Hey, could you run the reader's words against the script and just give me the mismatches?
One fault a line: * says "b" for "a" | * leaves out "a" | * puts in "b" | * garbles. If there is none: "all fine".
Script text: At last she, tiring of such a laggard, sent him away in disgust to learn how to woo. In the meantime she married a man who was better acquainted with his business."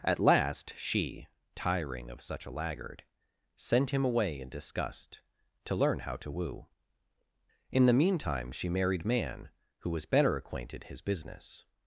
* leaves out "a"
* leaves out "with"